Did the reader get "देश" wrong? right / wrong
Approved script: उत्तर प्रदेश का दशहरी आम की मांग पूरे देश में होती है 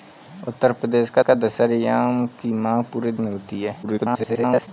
wrong